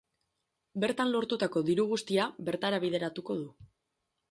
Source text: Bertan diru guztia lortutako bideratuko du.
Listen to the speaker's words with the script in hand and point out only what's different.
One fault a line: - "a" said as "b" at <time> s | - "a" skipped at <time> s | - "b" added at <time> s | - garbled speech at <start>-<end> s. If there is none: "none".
- "lortutako" added at 1.1 s
- "lortutako" said as "bertara" at 2.5 s